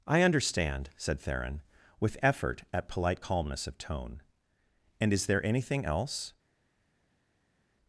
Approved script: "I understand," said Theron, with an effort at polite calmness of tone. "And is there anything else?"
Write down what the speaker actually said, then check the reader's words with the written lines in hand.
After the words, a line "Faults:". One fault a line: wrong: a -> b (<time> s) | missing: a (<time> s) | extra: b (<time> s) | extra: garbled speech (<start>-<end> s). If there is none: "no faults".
"I understand," said Theron, with effort at polite calmness of tone. "And is there anything else?"
Faults:
missing: an (2.2 s)